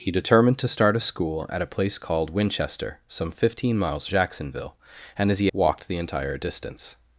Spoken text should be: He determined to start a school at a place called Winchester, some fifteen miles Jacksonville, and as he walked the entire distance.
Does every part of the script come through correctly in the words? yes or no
yes